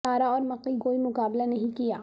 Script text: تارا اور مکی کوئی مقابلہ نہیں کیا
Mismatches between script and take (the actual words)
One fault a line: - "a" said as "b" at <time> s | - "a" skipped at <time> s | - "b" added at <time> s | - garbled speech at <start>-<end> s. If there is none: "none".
none